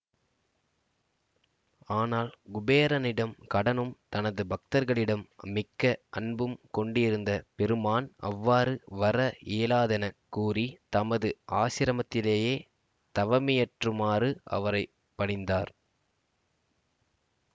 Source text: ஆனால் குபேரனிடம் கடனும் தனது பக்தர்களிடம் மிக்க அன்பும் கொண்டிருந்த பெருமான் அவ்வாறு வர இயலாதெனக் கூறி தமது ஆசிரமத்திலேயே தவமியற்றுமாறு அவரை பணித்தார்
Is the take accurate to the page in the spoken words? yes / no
yes